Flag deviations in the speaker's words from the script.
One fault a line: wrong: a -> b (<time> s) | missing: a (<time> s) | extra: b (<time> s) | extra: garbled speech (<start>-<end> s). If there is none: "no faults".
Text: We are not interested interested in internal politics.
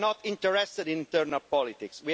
missing: interested (0.9 s)